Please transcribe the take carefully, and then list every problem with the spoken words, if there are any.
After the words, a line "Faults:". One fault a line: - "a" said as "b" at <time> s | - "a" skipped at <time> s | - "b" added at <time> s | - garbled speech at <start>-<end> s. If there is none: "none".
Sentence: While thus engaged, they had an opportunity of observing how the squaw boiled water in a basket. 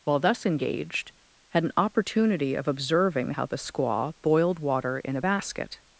While thus engaged, had an opportunity of observing how the squaw boiled water in a basket.
Faults:
- "they" skipped at 1.1 s